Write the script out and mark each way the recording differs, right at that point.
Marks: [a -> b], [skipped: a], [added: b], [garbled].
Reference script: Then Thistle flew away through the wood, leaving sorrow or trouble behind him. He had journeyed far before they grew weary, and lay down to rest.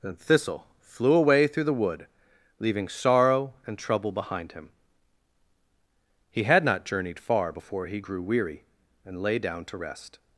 Then Thistle flew away through the wood, leaving sorrow [or -> and] trouble behind him. He had [added: not] journeyed far before [they -> he] grew weary, and lay down to rest.